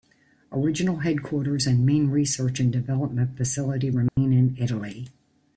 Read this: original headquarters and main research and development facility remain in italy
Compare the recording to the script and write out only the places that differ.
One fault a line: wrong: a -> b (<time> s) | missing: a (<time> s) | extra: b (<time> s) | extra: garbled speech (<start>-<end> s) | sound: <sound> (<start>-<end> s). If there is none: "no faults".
sound: dropout (4.1-4.2 s)